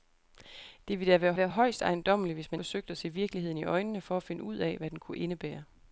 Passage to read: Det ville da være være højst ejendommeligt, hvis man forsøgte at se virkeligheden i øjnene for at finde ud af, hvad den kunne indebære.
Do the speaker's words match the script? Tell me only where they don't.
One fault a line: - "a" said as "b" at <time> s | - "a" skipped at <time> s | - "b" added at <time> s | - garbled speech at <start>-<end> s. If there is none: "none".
none